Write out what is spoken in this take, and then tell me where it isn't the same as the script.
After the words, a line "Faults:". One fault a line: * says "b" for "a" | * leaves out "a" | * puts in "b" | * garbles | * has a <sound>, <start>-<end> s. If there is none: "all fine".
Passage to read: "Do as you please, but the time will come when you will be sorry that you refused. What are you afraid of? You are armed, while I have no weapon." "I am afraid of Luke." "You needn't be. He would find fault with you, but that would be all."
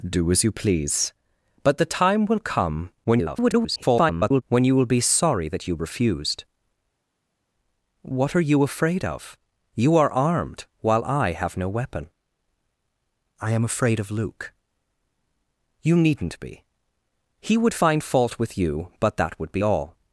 "Do as you please, but the time will come [garbled] when you will be sorry that you refused. What are you afraid of? You are armed, while I have no weapon." "I am afraid of Luke." "You needn't be. He would find fault with you, but that would be all."
Faults:
* garbles